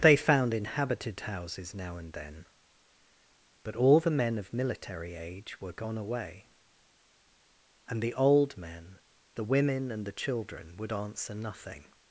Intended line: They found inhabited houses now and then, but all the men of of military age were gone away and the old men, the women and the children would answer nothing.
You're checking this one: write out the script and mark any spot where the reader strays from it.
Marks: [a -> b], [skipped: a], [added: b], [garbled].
They found inhabited houses now and then, but all the men of [skipped: of] military age were gone away and the old men, the women and the children would answer nothing.